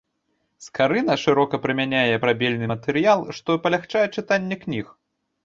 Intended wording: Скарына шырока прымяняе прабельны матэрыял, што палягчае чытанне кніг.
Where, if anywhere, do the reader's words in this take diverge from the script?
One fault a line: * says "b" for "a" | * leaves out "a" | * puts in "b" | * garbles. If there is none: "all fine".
all fine